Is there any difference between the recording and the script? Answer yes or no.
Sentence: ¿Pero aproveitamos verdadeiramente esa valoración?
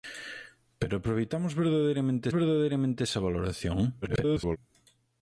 yes